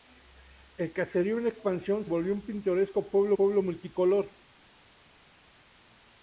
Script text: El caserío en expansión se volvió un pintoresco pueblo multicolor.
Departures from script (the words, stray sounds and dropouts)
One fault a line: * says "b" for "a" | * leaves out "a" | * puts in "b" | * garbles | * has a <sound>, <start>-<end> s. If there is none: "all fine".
* leaves out "se"
* puts in "pueblo"